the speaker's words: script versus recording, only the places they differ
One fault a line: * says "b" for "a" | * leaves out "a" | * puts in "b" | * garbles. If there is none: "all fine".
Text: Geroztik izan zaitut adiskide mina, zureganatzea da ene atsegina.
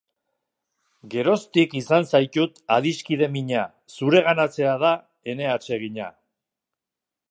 all fine